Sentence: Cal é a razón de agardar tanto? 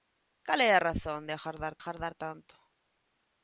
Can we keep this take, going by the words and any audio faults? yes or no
no